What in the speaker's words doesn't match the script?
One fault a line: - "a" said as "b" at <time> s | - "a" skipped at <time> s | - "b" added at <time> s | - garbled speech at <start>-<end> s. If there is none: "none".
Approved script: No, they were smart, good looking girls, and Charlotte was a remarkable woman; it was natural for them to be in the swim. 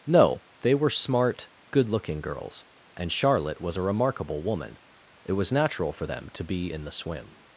none